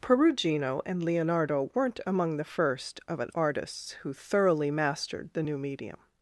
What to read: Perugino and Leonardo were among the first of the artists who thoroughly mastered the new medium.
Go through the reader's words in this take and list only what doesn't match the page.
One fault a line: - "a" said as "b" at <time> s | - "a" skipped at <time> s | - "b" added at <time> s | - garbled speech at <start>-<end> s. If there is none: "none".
- "were" said as "weren't" at 1.7 s
- "the" said as "an" at 3.2 s